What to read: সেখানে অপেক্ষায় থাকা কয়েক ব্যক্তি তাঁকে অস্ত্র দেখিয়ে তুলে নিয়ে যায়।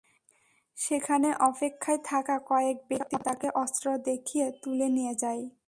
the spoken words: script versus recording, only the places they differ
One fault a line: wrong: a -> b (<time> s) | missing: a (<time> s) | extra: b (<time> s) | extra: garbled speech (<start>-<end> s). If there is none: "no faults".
no faults